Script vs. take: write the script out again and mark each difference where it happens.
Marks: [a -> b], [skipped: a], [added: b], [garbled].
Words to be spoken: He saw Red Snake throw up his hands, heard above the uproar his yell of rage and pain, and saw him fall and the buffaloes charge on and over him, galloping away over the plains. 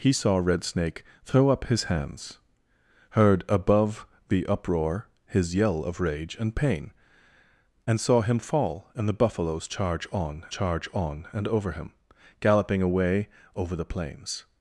He saw Red Snake throw up his hands, heard above the uproar his yell of rage and pain, and saw him fall and the buffaloes charge on [added: charge on] and over him, galloping away over the plains.